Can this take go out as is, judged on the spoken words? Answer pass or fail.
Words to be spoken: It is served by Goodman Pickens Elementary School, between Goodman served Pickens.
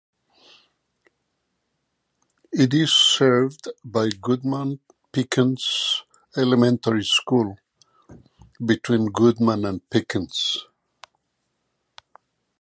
fail